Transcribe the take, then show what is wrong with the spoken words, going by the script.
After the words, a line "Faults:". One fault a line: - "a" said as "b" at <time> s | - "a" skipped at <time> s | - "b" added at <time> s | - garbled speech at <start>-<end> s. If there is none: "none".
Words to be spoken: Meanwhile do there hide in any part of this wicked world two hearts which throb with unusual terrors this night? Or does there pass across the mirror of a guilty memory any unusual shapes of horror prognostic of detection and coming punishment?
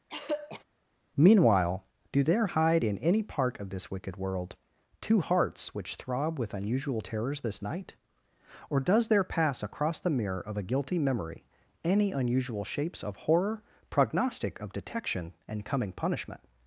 Meanwhile do there hide in any part of this wicked world two hearts which throb with unusual terrors this night? Or does there pass across the mirror of a guilty memory any unusual shapes of horror prognostic of detection and coming punishment?
Faults:
none